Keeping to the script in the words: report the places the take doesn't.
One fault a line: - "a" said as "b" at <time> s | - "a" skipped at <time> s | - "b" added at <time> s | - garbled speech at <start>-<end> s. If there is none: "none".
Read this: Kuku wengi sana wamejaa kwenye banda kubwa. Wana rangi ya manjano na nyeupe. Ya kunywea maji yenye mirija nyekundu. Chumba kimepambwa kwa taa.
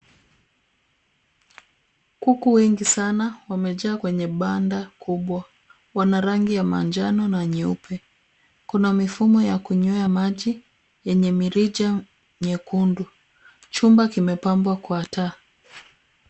- "Kuna mifumo" added at 8.7 s